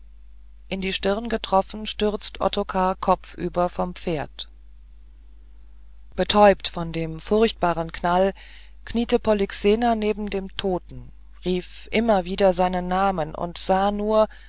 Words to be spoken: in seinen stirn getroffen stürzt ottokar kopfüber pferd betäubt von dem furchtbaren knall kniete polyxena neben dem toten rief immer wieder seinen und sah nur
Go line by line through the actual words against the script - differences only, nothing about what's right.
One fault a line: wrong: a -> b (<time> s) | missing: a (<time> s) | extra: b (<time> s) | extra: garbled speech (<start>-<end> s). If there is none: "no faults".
wrong: seinen -> die (0.8 s)
extra: vom (3.7 s)
extra: namen (12.9 s)